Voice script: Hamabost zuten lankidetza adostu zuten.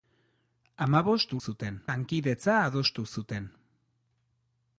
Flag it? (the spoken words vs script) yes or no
no